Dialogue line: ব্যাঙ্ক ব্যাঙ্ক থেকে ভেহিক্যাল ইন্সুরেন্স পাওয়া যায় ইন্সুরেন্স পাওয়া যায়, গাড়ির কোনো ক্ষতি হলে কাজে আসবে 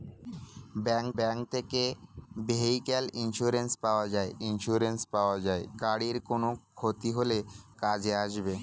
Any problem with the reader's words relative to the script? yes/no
no